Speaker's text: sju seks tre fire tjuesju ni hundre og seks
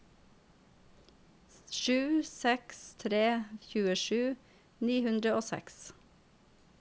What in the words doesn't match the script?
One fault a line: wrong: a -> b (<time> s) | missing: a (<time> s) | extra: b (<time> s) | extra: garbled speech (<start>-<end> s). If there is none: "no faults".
missing: fire (3.2 s)